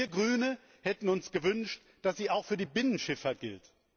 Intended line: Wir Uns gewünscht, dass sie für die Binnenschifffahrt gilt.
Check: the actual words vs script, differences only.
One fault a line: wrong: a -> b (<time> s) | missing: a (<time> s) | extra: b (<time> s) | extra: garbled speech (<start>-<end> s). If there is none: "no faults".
extra: Grüne hätten (0.1 s)
extra: auch (2.3 s)